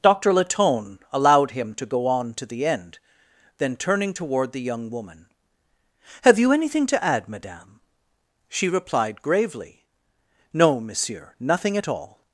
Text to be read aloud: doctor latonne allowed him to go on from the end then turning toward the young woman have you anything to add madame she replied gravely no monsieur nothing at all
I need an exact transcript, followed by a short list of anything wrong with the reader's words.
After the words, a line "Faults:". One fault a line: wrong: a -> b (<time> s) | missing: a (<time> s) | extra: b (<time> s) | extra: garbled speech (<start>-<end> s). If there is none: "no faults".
doctor latonne allowed him to go on to the end then turning toward the young woman have you anything to add madame she replied gravely no monsieur nothing at all
Faults:
wrong: from -> to (2.4 s)